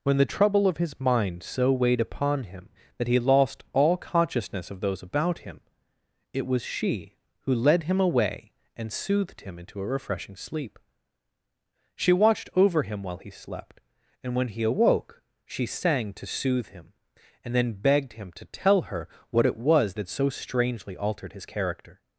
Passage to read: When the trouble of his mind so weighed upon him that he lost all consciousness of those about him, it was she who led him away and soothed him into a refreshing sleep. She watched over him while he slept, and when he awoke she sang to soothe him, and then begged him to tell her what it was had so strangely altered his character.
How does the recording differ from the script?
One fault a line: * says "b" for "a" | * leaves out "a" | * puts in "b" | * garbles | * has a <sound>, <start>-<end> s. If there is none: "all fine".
all fine